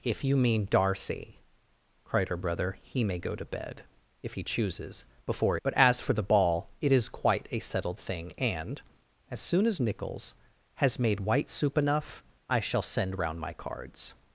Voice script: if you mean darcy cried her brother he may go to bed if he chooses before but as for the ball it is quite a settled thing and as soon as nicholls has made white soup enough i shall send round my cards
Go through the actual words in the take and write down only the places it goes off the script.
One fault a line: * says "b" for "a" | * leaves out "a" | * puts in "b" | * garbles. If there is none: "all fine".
all fine